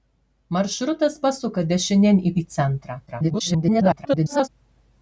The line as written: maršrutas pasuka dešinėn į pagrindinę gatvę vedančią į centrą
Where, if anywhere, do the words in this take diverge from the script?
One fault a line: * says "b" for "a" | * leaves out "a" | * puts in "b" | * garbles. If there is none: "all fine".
* leaves out "pagrindinę gatvę vedančią"
* garbles